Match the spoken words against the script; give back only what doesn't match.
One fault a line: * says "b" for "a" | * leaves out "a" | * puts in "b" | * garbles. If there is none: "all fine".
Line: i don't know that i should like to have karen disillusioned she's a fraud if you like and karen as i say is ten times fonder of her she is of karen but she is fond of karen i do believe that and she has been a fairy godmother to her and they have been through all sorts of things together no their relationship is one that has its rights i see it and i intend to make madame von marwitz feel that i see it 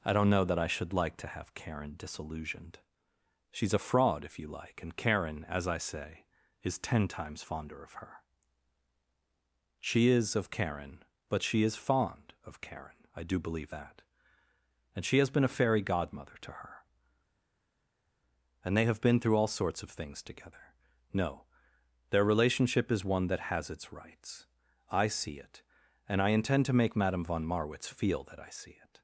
all fine